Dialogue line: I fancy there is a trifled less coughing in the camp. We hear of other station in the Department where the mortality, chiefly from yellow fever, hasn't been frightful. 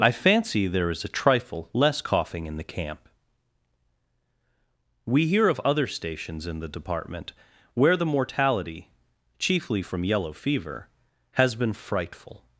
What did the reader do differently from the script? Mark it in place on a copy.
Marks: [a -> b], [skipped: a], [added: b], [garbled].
I fancy there is a [trifled -> trifle] less coughing in the camp. We hear of other [station -> stations] in the Department where the mortality, chiefly from yellow fever, [hasn't -> has] been frightful.